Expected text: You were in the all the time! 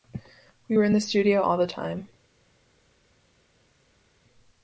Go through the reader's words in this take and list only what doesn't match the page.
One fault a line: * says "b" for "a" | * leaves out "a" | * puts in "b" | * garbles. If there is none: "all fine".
* says "We" for "You"
* puts in "studio"